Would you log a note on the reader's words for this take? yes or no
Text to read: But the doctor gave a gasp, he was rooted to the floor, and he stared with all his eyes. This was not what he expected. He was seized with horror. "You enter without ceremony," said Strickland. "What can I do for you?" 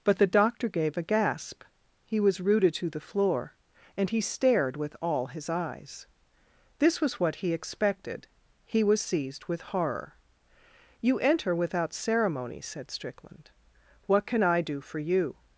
yes